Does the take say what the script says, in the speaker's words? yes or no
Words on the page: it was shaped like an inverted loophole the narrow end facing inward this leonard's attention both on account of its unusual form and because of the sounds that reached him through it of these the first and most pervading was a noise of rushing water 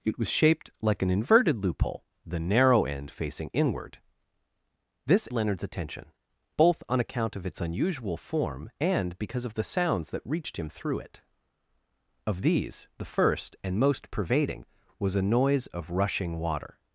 yes